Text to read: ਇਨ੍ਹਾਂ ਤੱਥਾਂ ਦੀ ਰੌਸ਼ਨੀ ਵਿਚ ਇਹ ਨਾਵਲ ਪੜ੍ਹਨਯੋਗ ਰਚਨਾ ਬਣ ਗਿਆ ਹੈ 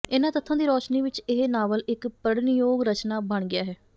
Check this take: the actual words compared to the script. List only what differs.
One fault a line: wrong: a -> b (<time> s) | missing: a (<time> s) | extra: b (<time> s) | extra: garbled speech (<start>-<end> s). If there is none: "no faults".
extra: ਇਕ (1.9 s)